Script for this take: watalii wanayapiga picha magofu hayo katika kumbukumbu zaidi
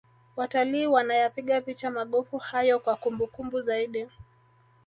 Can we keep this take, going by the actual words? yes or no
no